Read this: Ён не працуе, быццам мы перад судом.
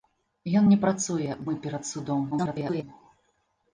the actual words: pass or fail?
fail